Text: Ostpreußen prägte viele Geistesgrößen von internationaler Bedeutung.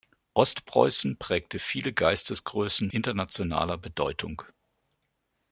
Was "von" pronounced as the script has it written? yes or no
no